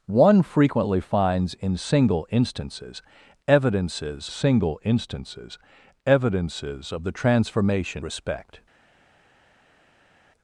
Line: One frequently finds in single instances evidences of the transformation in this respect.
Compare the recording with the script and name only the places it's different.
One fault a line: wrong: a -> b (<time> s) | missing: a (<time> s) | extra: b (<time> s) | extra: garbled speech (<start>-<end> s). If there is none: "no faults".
extra: single instances evidences (4.3 s)
missing: in this (8.0 s)